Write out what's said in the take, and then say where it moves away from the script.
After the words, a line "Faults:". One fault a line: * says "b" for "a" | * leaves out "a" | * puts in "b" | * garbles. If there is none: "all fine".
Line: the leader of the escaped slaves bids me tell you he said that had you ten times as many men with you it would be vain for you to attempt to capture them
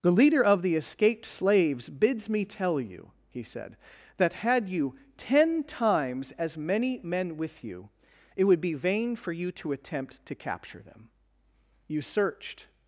the leader of the escaped slaves bids me tell you he said that had you ten times as many men with you it would be vain for you to attempt to capture them you searched
Faults:
* puts in "you searched"